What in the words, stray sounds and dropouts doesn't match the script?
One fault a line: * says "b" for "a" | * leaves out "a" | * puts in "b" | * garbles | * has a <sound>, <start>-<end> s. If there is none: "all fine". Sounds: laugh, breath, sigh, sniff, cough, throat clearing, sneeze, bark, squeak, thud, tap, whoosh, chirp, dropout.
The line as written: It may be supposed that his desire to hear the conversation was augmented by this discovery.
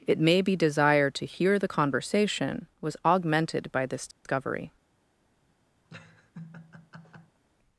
* leaves out "supposed that his"
* has a dropout, 4.1-4.3 s
* has a laugh, 5.9-7.4 s